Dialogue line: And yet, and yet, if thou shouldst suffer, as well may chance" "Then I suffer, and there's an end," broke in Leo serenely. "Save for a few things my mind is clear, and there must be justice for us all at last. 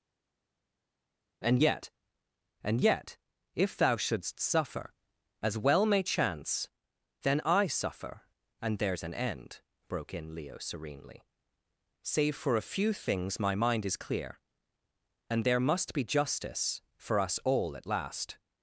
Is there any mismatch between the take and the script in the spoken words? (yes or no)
no